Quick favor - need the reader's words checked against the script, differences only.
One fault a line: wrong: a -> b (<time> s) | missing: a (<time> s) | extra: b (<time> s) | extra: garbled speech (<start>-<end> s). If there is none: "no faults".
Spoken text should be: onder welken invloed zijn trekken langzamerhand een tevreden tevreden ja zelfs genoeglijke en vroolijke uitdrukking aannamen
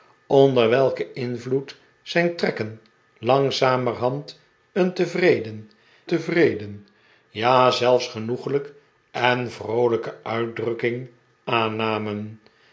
no faults